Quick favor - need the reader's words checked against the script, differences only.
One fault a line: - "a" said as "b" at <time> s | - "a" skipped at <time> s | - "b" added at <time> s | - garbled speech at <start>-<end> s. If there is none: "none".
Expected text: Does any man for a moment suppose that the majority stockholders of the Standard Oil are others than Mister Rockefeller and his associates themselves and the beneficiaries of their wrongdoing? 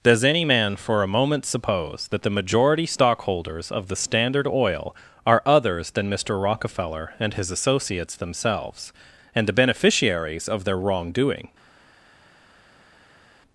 none